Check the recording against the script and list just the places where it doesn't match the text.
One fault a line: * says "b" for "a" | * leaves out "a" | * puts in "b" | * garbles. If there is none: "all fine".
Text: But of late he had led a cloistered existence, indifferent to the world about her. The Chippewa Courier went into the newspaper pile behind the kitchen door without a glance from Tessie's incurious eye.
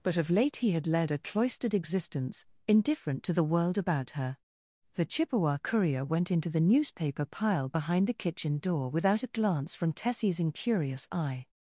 all fine